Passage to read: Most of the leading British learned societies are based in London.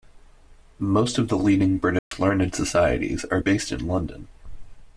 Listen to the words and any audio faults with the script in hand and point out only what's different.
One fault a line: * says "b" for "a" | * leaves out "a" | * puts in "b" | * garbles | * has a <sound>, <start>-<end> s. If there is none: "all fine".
* has a dropout, 2.0-2.1 s